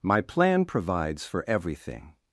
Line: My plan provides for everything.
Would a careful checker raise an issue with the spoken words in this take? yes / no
no